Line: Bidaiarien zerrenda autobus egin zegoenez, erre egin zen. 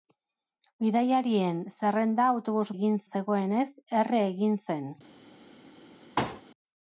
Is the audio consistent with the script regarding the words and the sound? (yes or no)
no